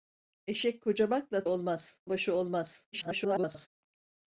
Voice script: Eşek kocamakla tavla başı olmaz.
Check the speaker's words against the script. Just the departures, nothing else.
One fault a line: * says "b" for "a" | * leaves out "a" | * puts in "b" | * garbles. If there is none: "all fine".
* says "olmaz" for "tavla"
* garbles